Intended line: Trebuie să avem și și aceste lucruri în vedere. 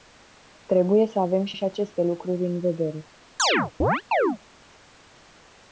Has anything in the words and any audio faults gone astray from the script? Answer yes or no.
yes